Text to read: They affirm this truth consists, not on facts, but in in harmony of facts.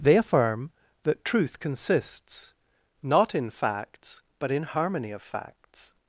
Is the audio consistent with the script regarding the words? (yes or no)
no